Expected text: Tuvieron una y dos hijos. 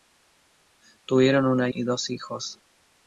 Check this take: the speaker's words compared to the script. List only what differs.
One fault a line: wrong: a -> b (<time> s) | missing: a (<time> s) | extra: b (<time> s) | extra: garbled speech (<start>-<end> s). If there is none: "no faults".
no faults